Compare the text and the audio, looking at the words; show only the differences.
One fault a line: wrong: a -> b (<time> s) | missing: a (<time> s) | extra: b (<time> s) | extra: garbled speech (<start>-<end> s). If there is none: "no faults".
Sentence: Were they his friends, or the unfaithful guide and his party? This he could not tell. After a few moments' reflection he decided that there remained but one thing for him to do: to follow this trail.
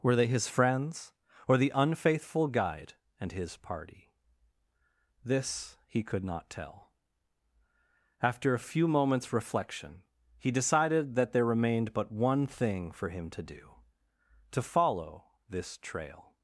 no faults